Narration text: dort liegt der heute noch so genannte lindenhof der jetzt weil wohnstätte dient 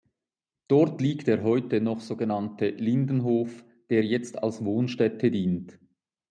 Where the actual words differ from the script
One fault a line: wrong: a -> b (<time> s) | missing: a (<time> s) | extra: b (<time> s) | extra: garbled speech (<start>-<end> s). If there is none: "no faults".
wrong: weil -> als (4.4 s)